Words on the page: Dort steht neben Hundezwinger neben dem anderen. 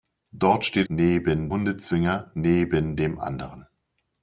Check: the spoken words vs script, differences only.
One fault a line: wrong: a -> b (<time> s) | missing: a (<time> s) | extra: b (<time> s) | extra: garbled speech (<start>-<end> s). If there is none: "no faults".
no faults